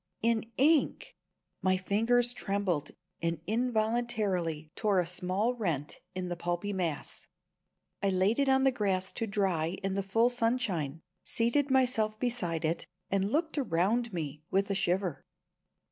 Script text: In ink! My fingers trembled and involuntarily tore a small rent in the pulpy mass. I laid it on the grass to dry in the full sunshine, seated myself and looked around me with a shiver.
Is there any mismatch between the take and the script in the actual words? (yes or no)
yes